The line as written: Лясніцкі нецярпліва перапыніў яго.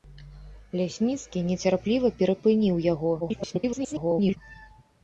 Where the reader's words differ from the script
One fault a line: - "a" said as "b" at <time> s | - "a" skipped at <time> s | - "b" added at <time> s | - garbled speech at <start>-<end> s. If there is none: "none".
- garbled speech at 3.2-4.4 s